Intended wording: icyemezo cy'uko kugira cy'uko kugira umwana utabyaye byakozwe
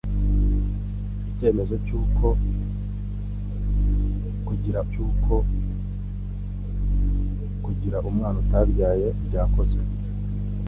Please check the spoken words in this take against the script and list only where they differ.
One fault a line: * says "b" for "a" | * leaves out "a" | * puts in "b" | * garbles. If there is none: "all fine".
all fine